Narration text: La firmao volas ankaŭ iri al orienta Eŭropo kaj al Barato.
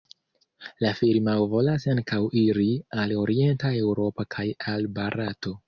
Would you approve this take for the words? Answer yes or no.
yes